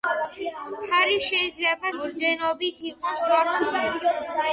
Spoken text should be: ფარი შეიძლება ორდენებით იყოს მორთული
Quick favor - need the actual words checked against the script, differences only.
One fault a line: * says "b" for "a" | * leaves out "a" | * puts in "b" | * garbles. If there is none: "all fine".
all fine